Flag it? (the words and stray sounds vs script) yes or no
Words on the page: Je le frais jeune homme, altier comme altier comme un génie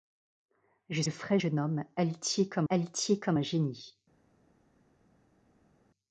no